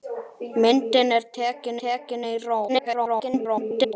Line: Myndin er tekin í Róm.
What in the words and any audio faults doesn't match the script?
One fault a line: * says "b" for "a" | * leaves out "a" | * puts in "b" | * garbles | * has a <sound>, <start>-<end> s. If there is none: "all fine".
* puts in "tekin"
* garbles